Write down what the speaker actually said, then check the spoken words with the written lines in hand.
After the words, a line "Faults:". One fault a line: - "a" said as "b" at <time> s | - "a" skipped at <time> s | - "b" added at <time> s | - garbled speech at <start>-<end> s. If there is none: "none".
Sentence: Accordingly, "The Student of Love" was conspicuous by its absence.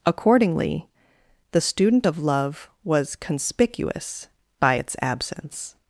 Accordingly, "The Student of Love" was conspicuous by its absence.
Faults:
none